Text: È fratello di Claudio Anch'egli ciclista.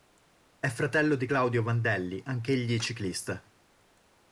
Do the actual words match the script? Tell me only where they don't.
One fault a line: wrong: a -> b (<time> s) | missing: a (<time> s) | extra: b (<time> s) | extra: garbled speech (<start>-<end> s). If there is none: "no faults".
extra: Vandelli (1.6 s)